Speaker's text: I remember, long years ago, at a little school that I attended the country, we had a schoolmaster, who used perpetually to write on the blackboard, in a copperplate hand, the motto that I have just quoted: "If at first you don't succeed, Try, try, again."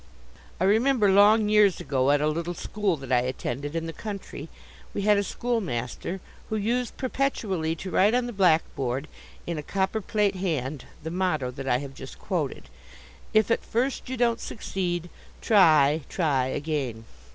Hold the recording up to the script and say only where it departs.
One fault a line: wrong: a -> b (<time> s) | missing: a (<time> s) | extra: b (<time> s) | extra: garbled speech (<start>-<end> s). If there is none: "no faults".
extra: in (3.8 s)